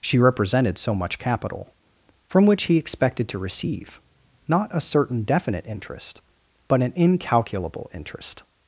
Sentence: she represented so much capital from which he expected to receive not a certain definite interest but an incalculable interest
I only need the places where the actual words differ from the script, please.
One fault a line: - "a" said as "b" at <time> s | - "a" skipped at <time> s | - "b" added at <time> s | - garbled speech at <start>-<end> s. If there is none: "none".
none